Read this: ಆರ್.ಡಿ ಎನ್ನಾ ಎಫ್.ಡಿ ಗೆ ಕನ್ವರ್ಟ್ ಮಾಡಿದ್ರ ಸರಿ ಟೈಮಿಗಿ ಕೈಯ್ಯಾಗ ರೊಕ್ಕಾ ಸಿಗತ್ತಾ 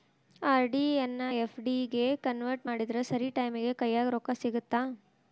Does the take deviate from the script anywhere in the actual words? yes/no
no